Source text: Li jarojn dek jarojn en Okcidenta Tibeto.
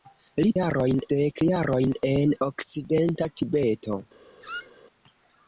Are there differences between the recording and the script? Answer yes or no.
no